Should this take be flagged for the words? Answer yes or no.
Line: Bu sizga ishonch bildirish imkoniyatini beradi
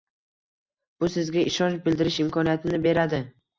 no